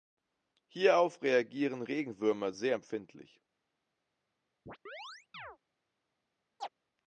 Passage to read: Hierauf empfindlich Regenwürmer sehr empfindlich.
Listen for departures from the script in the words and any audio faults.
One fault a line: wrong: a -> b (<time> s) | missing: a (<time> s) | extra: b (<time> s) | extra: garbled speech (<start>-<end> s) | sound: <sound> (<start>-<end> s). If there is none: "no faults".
wrong: empfindlich -> reagieren (1.2 s)
sound: chirp (4.7-5.6 s)
sound: chirp (6.6-6.7 s)